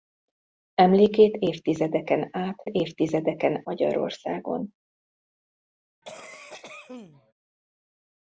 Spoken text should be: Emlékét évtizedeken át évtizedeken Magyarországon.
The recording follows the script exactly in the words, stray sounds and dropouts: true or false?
false